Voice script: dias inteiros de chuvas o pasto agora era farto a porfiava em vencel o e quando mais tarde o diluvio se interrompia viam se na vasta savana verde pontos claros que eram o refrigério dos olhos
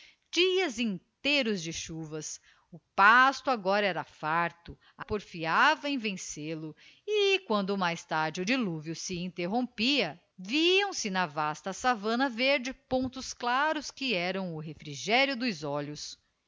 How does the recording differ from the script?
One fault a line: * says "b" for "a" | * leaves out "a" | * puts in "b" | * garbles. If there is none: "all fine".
all fine